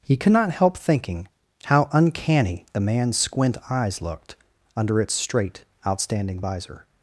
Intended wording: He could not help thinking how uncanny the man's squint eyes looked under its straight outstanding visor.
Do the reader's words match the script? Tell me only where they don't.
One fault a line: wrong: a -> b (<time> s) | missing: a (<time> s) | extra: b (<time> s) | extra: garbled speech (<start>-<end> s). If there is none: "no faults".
no faults